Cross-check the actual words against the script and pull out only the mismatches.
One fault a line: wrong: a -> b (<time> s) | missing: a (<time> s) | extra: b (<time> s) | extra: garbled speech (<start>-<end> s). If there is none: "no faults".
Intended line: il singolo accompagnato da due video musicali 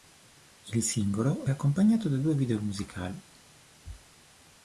no faults